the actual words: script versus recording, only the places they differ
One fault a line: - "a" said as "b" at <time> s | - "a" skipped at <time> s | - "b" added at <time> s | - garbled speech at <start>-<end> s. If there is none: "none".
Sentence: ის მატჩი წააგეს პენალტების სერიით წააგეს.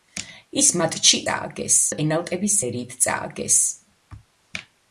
none